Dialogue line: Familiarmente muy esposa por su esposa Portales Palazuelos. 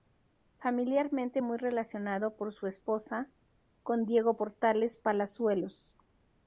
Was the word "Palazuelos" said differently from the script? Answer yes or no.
no